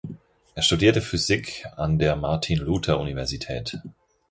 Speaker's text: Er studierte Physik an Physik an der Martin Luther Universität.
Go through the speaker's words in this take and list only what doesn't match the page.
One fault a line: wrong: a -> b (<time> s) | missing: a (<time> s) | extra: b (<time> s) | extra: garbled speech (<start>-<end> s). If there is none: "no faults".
missing: Physik an (2.0 s)